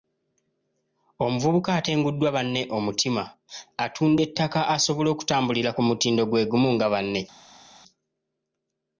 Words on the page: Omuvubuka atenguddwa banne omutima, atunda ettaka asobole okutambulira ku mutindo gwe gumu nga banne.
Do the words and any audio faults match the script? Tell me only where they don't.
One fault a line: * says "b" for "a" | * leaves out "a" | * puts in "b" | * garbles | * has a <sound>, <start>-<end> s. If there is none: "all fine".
all fine